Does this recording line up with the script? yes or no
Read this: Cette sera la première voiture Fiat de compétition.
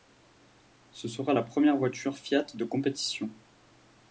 no